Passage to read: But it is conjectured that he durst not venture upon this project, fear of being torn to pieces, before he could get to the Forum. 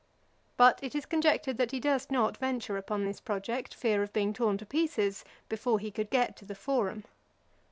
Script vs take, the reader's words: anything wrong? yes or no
no